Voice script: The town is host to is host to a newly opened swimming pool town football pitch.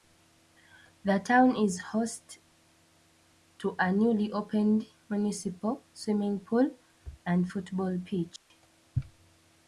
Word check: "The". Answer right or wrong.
right